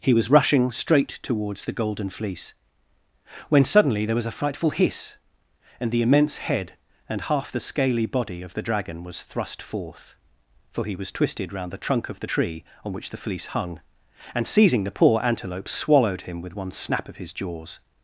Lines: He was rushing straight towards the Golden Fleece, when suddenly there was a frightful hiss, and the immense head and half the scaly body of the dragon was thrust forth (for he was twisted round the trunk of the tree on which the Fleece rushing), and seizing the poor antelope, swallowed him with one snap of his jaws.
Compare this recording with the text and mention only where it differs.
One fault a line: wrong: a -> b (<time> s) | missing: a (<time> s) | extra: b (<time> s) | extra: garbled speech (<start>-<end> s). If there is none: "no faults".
wrong: rushing -> hung (13.5 s)